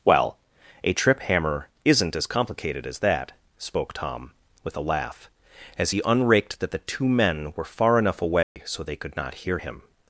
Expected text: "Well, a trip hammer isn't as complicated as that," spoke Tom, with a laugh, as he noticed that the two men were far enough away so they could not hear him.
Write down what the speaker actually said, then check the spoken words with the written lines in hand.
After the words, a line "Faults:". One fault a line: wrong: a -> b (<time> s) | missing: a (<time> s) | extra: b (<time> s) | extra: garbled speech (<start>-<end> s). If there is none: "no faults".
"Well, a trip hammer isn't as complicated as that," spoke Tom, with a laugh, as he unraked that the two men were far enough away so they could not hear him.
Faults:
wrong: noticed -> unraked (6.0 s)